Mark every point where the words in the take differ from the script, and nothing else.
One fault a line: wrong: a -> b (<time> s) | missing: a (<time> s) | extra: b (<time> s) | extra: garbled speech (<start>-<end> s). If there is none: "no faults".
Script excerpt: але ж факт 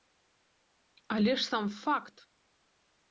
extra: сам (1.5 s)